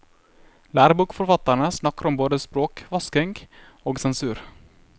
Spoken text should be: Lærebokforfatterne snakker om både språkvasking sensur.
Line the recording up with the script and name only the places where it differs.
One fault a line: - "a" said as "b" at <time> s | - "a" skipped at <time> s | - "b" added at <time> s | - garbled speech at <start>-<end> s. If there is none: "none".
- "og" added at 3.8 s